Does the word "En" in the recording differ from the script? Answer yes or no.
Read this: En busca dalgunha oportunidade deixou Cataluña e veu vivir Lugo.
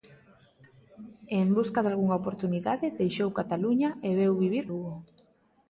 no